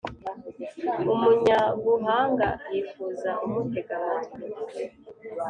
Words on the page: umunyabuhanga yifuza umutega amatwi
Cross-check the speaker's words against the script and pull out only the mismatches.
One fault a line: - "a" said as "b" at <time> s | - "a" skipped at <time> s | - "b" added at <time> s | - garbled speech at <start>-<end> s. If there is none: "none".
none